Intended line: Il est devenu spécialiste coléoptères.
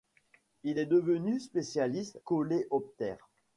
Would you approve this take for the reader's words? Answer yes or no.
yes